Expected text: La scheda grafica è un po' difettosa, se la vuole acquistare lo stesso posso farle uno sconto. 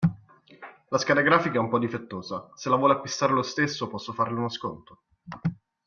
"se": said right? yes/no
yes